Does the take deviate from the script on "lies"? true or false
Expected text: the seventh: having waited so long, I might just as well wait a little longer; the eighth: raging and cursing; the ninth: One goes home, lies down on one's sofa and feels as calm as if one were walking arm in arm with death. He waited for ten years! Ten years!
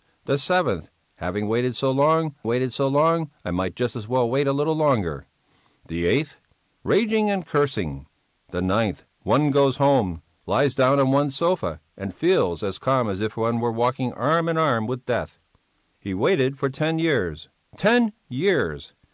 false